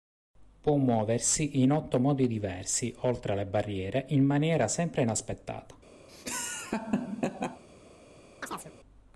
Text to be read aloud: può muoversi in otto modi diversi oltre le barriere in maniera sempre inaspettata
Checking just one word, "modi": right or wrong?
right